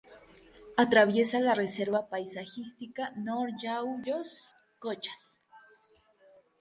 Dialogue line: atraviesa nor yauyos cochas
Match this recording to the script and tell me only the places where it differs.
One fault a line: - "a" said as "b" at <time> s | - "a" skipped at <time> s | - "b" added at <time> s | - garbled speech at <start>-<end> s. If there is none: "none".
- "la reserva paisajística" added at 1.4 s